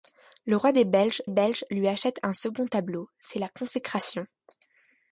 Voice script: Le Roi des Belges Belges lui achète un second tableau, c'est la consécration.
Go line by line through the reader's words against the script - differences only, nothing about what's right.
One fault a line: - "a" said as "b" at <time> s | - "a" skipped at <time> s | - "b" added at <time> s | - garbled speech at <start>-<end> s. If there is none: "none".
none